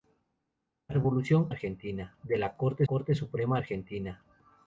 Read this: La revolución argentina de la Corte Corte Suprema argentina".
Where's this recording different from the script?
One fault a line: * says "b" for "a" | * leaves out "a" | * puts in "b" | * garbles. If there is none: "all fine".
all fine